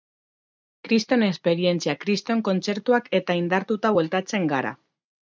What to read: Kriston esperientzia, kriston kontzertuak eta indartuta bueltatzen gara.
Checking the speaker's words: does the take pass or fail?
pass